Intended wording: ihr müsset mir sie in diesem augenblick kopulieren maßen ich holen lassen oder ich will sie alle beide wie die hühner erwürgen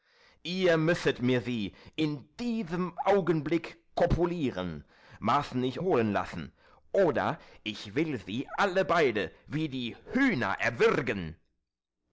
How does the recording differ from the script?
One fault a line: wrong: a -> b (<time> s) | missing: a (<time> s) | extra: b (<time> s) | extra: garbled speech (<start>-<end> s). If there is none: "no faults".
no faults